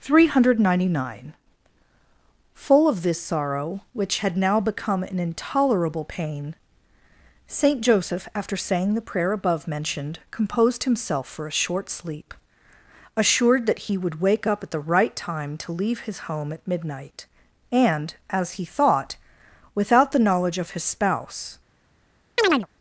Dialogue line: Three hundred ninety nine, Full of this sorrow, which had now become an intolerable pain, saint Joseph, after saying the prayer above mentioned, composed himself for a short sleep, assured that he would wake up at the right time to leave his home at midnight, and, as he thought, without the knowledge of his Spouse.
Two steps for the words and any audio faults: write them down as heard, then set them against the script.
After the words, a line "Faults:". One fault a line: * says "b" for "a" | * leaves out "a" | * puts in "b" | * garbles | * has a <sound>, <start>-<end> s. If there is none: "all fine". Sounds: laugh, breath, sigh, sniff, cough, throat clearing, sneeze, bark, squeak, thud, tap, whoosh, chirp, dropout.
Three hundred ninety nine, Full of this sorrow, which had now become an intolerable pain, saint Joseph, after saying the prayer above mentioned, composed himself for a short sleep, assured that he would wake up at the right time to leave his home at midnight, and, as he thought, without the knowledge of his Spouse.
Faults:
* has a chirp, 22.4-22.7 s